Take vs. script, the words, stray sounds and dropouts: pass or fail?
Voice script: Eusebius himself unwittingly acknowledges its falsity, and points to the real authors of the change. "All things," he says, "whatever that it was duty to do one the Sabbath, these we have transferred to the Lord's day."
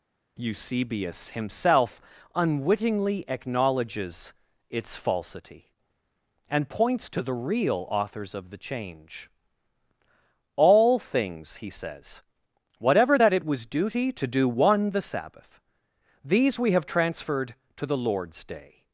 pass